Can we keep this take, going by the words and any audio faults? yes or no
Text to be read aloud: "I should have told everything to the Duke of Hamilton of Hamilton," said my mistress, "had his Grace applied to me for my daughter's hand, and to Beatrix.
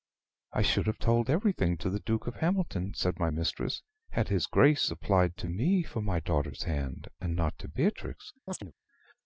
no